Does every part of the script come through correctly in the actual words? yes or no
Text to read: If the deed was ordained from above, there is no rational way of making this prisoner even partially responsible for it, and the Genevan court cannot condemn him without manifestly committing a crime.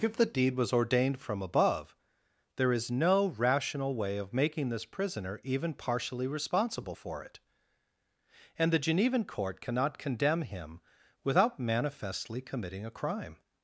yes